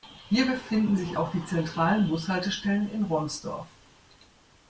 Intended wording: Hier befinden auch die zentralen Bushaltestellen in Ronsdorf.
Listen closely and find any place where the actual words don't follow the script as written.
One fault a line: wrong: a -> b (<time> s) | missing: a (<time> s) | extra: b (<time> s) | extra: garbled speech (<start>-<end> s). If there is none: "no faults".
extra: sich (0.9 s)